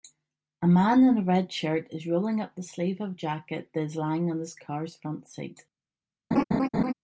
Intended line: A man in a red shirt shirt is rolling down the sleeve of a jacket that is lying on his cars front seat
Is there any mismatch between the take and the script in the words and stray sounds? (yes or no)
yes